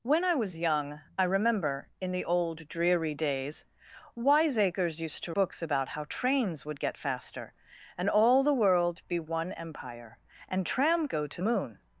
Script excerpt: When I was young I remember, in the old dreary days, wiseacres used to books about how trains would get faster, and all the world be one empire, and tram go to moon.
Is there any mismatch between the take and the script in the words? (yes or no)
no